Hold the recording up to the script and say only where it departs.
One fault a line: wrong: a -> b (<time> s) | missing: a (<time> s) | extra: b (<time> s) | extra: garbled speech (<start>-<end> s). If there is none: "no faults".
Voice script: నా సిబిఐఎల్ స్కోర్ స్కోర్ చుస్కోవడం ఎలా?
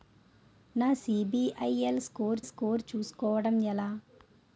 no faults